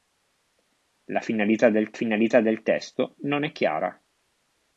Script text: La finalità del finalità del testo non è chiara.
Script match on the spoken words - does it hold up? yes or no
yes